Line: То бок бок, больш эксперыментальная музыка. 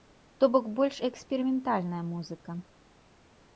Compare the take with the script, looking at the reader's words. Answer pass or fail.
fail